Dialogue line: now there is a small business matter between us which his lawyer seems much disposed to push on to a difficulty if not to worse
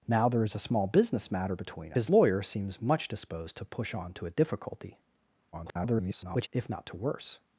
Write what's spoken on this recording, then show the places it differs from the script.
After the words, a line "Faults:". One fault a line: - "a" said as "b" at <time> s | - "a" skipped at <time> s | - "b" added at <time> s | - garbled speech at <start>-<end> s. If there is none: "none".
now there is a small business matter between his lawyer seems much disposed to push on to a difficulty [garbled] if not to worse
Faults:
- "us which" skipped at 1.9 s
- garbled speech at 5.5-6.5 s